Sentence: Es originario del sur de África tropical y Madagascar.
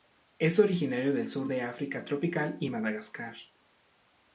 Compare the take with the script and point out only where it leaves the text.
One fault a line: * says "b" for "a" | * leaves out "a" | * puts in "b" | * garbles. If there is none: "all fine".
all fine